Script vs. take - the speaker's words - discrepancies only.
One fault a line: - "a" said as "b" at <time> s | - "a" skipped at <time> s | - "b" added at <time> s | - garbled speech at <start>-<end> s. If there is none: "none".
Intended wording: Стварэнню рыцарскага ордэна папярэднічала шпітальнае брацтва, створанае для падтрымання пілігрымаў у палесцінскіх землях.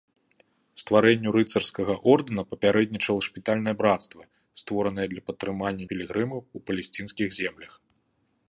none